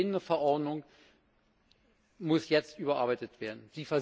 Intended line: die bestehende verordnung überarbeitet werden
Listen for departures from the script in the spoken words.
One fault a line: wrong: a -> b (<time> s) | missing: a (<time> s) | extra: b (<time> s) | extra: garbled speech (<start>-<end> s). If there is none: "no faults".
extra: muss jetzt (2.2 s)